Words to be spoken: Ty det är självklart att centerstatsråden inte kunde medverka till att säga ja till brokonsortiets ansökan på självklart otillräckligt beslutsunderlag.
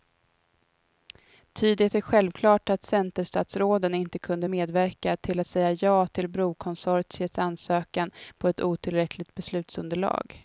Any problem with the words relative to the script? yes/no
yes